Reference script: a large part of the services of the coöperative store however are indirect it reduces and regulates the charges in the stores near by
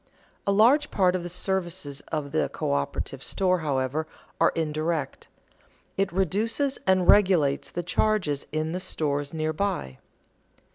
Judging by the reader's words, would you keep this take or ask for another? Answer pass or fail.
pass